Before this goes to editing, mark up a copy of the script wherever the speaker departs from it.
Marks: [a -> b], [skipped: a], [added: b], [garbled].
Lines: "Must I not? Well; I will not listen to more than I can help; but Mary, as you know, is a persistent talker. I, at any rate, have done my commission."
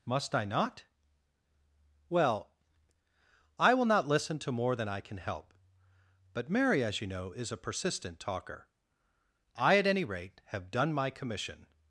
"Must I not? Well; I will not listen to more than I can help; but Mary, as you know, is a persistent talker. I, at any rate, have done my commission."